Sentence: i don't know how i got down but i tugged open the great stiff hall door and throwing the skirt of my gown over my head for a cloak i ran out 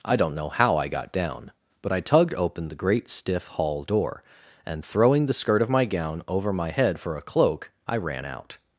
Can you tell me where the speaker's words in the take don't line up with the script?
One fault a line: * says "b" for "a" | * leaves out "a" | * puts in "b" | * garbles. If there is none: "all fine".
all fine